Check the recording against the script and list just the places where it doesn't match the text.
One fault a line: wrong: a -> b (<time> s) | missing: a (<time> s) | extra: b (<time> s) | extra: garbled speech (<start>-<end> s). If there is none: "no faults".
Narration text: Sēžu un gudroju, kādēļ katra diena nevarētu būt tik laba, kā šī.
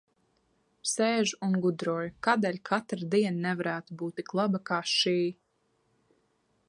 no faults